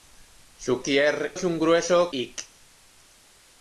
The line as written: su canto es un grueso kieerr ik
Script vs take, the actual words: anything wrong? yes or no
yes